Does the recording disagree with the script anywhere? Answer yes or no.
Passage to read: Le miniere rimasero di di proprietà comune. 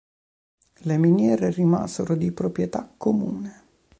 yes